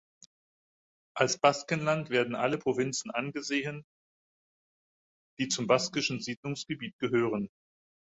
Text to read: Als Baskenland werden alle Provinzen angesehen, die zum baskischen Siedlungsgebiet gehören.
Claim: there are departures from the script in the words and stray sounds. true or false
false